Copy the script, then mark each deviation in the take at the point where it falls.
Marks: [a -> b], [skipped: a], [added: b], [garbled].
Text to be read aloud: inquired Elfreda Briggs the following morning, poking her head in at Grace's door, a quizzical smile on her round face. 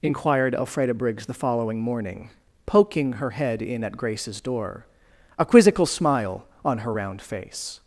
inquired Elfreda Briggs the following morning, poking her head in at Grace's door, a quizzical smile on her round face.